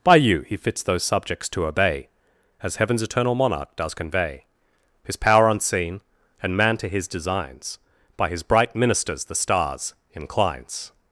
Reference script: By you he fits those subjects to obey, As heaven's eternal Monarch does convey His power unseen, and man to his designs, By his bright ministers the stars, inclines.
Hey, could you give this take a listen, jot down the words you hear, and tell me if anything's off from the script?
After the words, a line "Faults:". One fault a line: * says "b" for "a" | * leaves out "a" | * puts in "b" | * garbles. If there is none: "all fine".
By you he fits those subjects to obey, As heaven's eternal Monarch does convey His power unseen, and man to his designs, By his bright ministers the stars, inclines.
Faults:
all fine